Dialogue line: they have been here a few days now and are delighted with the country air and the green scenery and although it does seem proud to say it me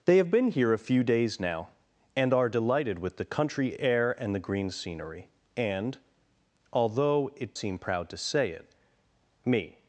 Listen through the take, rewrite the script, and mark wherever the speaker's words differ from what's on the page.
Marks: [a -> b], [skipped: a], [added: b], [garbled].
they have been here a few days now and are delighted with the country air and the green scenery and although it [skipped: does] seem proud to say it me